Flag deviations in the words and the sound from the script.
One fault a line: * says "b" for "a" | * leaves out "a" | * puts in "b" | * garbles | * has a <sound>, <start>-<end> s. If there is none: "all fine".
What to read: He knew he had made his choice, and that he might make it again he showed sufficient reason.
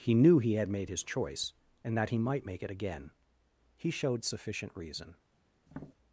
* has a tap, 5.7-5.9 s